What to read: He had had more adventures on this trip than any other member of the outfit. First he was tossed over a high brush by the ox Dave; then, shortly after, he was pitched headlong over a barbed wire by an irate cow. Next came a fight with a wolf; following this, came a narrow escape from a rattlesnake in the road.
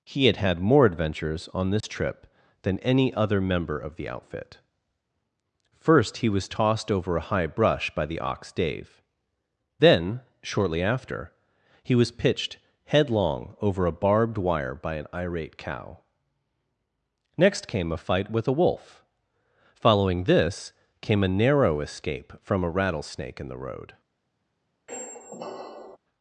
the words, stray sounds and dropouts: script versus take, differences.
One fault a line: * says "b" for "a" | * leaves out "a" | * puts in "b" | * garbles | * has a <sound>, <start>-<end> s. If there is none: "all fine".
* has a dropout, 1.8-1.8 s
* has a squeak, 24.9-26.0 s